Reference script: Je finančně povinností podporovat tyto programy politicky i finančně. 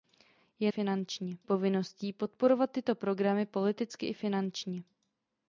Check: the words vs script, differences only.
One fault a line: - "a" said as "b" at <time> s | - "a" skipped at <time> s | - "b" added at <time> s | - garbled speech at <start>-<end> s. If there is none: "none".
none